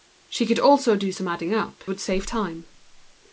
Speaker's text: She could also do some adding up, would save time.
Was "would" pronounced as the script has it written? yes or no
yes